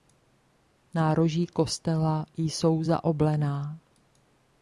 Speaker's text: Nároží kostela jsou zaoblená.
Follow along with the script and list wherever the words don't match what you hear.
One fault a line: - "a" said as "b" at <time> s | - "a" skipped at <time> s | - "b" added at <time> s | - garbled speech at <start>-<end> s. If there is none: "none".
none